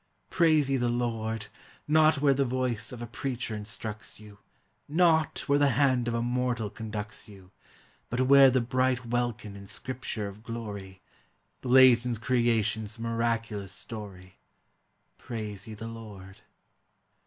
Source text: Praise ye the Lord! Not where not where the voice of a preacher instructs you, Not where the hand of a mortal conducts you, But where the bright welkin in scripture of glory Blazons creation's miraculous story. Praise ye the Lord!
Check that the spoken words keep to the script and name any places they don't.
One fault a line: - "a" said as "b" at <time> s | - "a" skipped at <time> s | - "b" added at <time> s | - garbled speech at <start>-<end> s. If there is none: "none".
- "not where" skipped at 2.3 s